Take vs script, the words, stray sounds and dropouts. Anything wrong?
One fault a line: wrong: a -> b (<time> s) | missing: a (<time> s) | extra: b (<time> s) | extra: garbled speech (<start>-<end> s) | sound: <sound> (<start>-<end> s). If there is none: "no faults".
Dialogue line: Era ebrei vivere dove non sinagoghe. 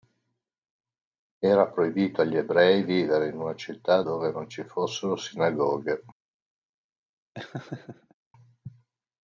extra: proibito agli (1.7 s)
extra: in una città (3.3 s)
extra: ci fossero (4.5 s)
sound: laugh (7.3-8.1 s)